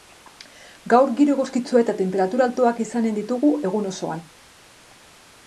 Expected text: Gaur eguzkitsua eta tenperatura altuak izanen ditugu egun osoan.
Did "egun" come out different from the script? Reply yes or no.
no